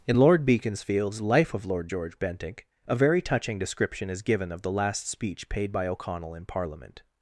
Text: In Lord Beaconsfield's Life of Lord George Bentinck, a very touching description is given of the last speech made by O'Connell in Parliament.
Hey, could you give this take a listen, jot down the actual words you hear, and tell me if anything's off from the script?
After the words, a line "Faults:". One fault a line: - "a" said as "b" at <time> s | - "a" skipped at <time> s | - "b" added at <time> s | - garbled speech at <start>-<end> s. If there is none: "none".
In Lord Beaconsfield's Life of Lord George Bentinck, a very touching description is given of the last speech paid by O'Connell in Parliament.
Faults:
- "made" said as "paid" at 5.5 s